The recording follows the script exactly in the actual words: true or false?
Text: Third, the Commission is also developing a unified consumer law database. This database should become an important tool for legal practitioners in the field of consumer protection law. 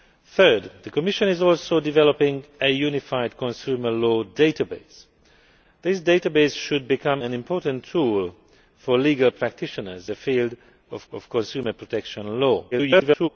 false